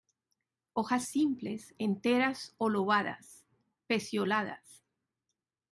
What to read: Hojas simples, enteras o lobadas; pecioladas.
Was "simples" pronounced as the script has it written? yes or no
yes